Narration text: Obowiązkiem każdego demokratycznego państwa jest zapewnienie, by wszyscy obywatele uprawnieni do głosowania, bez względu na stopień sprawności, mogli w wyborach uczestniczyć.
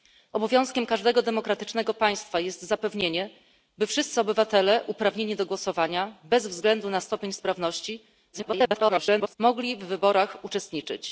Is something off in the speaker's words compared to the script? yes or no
yes